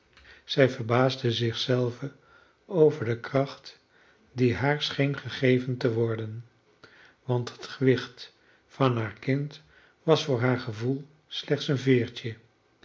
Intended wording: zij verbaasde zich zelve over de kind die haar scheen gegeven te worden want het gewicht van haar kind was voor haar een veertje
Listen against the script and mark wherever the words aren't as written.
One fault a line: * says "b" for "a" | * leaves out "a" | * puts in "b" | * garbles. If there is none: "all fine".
* says "kracht" for "kind"
* puts in "gevoel slechts"